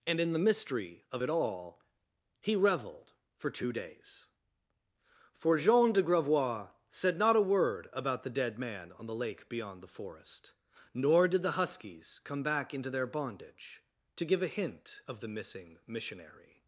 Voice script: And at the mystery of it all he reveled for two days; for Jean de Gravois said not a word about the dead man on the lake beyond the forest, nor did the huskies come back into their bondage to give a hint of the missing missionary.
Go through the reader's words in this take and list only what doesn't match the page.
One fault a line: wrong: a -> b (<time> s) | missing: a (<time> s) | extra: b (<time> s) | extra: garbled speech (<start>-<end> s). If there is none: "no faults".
wrong: at -> in (0.2 s)